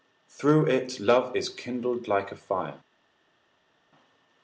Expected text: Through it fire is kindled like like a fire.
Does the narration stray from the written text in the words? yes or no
yes